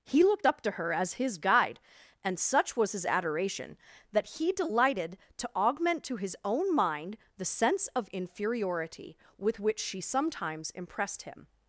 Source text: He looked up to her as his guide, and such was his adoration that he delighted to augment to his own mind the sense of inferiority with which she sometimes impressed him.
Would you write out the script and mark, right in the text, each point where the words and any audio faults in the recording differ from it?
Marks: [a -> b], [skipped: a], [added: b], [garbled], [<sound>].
He looked up to her as his guide, and such was his adoration that he delighted to augment to his own mind the sense of inferiority with which she sometimes impressed him.